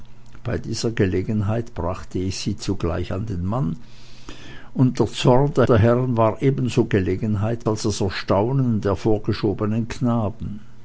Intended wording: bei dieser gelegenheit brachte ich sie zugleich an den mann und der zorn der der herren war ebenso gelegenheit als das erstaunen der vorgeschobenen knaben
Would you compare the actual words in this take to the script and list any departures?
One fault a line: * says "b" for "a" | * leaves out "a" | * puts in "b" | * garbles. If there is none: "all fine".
all fine